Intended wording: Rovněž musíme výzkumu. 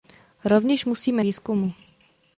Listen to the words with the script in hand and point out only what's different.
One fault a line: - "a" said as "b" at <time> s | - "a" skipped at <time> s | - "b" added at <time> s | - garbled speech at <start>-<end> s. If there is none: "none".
none